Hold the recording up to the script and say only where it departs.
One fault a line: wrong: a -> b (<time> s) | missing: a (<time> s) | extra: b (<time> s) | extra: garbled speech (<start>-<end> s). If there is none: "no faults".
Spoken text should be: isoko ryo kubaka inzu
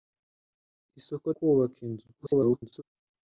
missing: ryo (1.3 s)
extra: garbled speech (2.2-2.8 s)